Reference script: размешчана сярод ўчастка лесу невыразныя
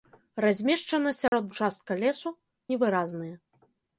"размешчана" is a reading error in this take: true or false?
false